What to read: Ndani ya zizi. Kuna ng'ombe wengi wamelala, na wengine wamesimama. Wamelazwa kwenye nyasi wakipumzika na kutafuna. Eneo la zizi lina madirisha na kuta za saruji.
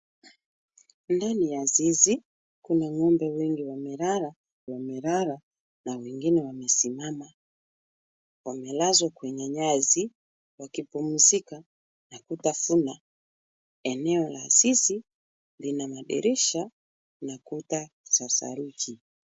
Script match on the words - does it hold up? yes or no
no